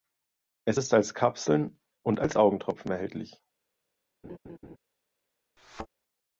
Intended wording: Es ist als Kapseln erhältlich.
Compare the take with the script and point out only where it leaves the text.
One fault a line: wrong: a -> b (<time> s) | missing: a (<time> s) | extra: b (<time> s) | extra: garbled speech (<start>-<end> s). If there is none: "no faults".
extra: und als Augentropfen (2.0 s)